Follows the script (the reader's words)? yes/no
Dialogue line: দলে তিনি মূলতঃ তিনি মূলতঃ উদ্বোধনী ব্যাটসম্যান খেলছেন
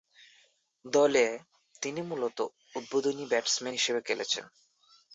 no